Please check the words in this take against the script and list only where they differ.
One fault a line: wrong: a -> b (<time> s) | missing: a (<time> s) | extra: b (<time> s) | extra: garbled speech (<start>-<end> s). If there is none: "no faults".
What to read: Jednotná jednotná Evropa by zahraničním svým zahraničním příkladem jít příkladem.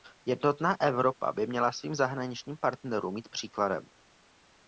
missing: jednotná (0.8 s)
wrong: zahraničním -> měla (1.5 s)
wrong: příkladem -> partnerům (2.6 s)